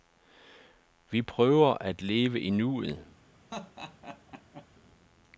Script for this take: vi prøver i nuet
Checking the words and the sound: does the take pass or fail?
fail